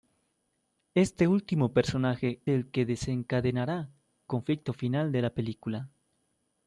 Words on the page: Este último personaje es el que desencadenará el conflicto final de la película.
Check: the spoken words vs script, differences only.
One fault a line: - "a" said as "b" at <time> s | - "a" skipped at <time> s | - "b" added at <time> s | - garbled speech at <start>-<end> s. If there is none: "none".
- "es" skipped at 2.4 s
- "el" skipped at 3.9 s